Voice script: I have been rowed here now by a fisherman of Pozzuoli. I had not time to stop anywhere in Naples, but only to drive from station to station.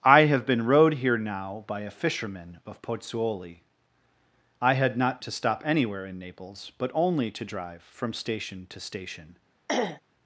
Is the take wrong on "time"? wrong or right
wrong